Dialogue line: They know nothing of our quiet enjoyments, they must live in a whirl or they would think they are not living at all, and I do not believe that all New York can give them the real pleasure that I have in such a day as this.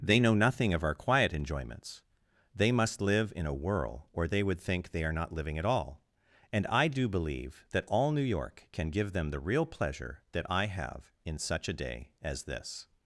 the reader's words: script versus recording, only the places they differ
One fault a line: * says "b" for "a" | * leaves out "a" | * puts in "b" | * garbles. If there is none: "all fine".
* leaves out "not"